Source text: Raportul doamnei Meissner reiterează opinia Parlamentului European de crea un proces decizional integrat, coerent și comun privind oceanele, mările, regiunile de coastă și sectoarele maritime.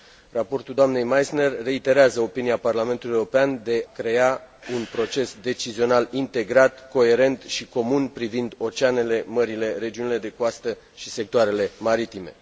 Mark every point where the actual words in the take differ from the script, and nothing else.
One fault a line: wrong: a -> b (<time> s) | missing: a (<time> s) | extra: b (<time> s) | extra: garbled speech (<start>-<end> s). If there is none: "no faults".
no faults